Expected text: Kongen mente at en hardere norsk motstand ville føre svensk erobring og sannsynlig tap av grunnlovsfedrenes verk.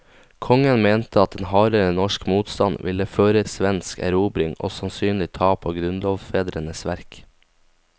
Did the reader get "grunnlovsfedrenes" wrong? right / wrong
right